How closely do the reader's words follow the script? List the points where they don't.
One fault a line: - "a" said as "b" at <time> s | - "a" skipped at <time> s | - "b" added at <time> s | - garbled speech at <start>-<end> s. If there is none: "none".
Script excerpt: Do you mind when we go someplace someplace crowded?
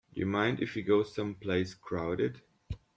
- "when" said as "if" at 0.6 s
- "someplace" skipped at 1.8 s